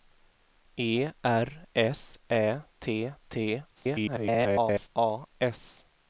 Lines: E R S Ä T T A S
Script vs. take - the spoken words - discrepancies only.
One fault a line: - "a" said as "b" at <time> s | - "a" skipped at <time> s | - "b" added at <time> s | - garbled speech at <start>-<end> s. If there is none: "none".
- garbled speech at 3.7-4.9 s